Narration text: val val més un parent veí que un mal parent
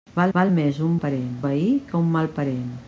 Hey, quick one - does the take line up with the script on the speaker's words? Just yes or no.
yes